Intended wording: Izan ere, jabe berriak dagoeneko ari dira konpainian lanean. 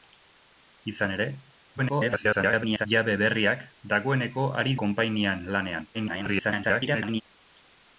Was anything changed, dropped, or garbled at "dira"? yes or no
yes